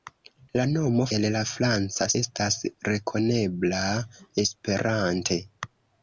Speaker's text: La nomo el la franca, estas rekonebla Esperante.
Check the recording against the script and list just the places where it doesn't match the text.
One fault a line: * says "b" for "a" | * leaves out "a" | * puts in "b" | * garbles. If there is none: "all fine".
all fine